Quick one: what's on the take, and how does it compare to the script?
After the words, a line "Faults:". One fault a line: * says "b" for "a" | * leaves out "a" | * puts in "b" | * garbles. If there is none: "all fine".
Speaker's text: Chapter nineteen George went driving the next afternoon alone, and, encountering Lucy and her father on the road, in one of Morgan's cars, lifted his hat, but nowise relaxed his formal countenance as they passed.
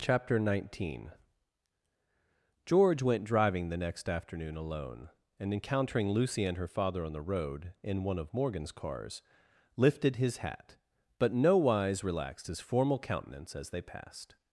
Chapter nineteen George went driving the next afternoon alone, and, encountering Lucy and her father on the road, in one of Morgan's cars, lifted his hat, but nowise relaxed his formal countenance as they passed.
Faults:
all fine